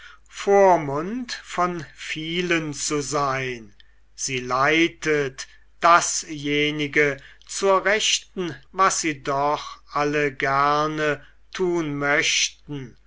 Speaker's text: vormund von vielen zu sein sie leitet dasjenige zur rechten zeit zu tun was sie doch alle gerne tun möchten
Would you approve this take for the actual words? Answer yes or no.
no